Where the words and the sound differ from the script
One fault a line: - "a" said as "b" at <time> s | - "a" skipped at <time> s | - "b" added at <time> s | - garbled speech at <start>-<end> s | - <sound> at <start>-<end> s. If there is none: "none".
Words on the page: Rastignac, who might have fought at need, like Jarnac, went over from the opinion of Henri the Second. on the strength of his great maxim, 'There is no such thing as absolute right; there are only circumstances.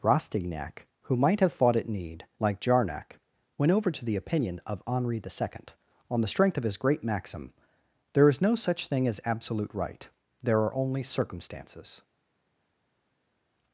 - "from" said as "to" at 3.9 s